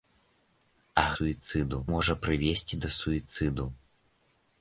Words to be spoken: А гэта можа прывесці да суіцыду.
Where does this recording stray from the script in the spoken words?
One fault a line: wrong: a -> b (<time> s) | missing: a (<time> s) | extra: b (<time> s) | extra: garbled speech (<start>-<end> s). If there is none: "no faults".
wrong: гэта -> суіцыду (1.1 s)